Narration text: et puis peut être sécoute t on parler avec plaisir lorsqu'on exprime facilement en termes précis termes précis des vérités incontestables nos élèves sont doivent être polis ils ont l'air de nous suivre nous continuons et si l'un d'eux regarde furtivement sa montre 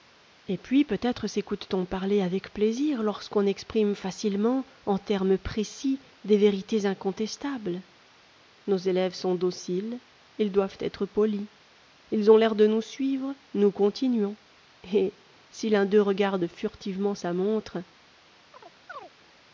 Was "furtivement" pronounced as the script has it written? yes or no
yes